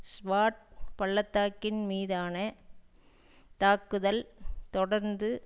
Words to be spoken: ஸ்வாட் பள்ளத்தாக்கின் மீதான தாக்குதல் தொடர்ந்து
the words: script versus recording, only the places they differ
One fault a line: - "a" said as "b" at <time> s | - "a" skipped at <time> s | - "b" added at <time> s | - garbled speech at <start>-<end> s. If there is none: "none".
none